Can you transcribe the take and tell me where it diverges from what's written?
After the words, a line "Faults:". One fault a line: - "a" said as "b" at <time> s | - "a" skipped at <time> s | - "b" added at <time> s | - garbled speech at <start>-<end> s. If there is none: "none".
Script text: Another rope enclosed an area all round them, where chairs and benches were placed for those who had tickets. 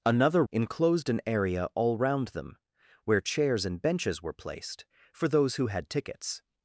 Another enclosed an area all round them, where chairs and benches were placed for those who had tickets.
Faults:
- "rope" skipped at 0.4 s